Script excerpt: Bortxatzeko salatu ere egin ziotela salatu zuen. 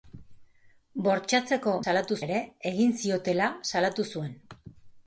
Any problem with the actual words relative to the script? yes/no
no